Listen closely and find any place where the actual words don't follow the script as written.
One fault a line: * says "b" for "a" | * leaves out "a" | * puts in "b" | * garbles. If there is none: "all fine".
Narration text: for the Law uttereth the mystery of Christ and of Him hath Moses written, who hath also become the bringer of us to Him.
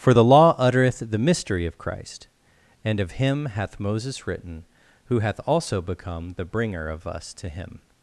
all fine